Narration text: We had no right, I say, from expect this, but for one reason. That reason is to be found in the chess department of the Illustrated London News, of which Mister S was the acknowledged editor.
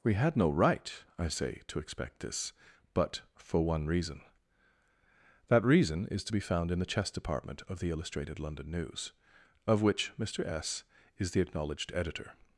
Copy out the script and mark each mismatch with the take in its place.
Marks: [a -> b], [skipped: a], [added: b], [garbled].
We had no right, I say, [from -> to] expect this, but for one reason. That reason is to be found in the chess department of the Illustrated London News, of which Mister S [was -> is] the acknowledged editor.